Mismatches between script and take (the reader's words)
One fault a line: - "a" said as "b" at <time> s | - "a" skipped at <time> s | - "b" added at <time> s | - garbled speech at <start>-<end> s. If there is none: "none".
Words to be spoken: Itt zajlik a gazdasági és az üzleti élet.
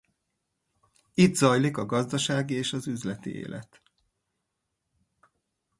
none